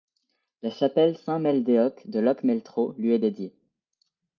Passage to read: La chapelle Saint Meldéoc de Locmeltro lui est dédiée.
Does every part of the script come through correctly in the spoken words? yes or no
yes